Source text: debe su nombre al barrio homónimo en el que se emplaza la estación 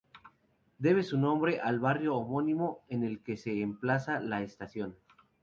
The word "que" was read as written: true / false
true